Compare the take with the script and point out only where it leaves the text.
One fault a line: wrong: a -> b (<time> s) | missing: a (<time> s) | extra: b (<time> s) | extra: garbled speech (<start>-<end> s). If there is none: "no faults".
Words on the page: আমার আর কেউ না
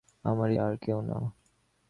no faults